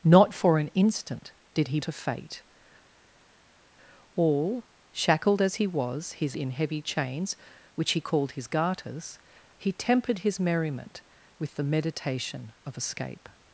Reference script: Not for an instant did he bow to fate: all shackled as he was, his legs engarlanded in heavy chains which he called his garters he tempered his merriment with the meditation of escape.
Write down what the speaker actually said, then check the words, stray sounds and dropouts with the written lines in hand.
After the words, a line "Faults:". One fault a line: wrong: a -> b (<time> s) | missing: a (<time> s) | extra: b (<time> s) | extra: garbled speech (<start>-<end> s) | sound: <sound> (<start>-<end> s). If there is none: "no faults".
Not for an instant did he to fate: all shackled as he was, his in heavy chains which he called his garters he tempered his merriment with the meditation of escape.
Faults:
missing: bow (1.8 s)
missing: legs engarlanded (6.4 s)